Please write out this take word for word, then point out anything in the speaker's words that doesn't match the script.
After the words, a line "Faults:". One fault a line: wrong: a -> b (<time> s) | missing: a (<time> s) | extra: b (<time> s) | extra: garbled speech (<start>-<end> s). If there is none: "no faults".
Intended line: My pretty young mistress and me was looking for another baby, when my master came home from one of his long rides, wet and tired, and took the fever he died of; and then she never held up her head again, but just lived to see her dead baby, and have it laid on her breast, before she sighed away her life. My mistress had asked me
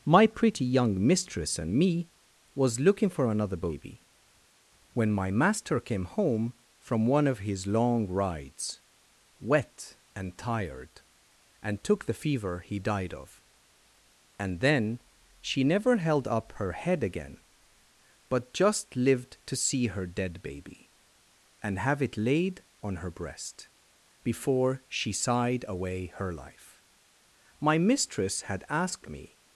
My pretty young mistress and me was looking for another baby, when my master came home from one of his long rides, wet and tired, and took the fever he died of; and then she never held up her head again, but just lived to see her dead baby, and have it laid on her breast, before she sighed away her life. My mistress had asked me
Faults:
no faults